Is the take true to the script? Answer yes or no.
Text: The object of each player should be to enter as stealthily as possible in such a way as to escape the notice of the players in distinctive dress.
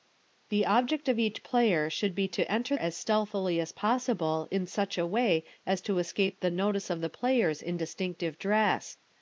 yes